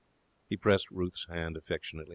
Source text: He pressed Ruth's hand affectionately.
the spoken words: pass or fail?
pass